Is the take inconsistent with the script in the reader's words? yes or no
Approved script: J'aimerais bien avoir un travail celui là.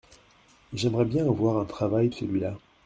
no